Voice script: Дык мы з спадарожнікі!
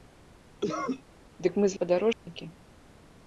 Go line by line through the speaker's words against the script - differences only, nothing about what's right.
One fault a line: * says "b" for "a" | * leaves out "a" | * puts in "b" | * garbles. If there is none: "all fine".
all fine